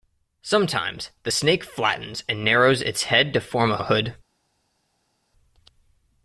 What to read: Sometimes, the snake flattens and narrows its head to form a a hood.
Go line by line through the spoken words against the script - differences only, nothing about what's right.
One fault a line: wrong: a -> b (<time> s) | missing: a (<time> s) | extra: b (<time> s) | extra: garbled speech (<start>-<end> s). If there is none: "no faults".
no faults